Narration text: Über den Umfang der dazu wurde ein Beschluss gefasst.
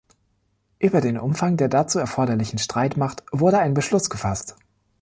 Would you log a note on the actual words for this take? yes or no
yes